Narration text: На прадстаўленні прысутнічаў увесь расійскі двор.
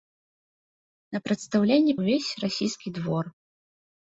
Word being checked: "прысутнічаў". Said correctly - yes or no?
no